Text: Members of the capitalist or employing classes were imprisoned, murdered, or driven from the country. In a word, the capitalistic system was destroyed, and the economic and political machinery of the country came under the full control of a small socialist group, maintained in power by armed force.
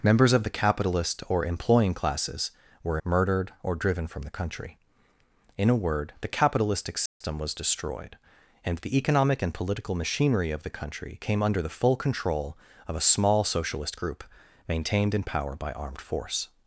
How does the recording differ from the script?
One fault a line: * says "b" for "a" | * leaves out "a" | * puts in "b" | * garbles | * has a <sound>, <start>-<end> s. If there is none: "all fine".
* leaves out "imprisoned"
* has a dropout, 7.1-7.2 s